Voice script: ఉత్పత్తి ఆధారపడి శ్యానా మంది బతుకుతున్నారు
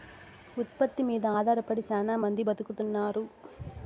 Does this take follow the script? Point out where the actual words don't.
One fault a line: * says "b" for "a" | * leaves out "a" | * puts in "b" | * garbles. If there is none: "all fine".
* puts in "మీద"